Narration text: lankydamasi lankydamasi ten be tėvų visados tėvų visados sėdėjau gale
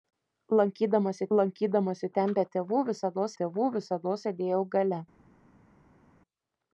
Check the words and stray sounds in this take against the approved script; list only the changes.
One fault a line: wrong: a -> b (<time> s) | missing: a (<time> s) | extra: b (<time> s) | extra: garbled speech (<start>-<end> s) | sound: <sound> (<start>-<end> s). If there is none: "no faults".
no faults